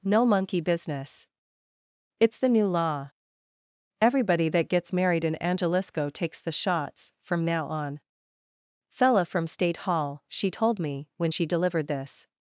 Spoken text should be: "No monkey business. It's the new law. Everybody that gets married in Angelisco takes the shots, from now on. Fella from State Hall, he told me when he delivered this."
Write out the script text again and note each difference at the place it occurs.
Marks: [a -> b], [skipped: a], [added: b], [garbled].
"No monkey business. It's the new law. Everybody that gets married in Angelisco takes the shots, from now on. Fella from State Hall, [he -> she] told me when [he -> she] delivered this."